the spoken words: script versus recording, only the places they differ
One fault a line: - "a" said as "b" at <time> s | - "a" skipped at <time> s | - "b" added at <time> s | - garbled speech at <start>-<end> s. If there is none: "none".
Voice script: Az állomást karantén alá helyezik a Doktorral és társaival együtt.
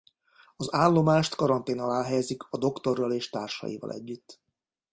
none